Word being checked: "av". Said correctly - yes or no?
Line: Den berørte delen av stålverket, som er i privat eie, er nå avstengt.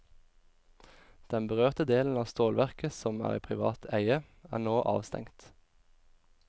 yes